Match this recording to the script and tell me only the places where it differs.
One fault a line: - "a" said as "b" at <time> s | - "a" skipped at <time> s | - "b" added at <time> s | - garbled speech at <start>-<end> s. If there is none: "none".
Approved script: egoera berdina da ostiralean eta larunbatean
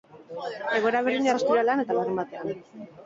none